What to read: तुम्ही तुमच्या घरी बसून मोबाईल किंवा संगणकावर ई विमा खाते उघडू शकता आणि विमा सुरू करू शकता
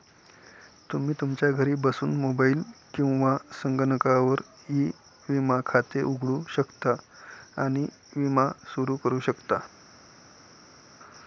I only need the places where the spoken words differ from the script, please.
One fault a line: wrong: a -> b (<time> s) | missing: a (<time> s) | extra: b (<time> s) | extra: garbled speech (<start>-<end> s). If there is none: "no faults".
no faults